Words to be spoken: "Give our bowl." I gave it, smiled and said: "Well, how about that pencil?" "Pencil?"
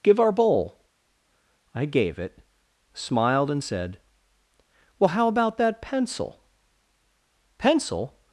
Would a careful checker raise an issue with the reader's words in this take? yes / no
no